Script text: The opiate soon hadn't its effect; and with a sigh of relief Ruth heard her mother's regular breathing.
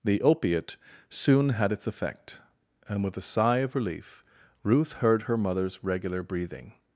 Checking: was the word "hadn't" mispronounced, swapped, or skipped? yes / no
yes